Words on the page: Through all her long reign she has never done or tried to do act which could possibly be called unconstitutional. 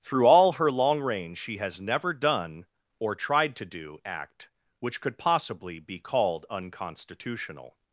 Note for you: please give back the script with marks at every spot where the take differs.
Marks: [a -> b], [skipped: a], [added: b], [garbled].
Through all her long reign she has never done or tried to do act which could possibly be called unconstitutional.